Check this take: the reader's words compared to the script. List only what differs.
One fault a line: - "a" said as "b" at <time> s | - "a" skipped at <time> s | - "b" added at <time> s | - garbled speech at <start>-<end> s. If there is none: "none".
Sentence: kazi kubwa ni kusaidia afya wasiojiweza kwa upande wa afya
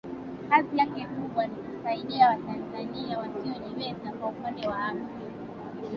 - "yake" added at 0.7 s
- "afya" said as "watanzania" at 2.3 s